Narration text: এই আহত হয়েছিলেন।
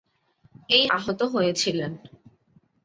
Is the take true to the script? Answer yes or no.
yes